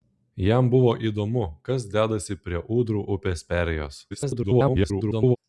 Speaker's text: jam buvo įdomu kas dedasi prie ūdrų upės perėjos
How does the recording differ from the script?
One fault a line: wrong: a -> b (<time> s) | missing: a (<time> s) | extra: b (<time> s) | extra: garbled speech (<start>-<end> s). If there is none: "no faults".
extra: garbled speech (4.1-5.4 s)